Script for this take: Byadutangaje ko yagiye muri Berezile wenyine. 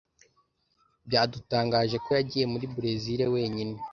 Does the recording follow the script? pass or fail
pass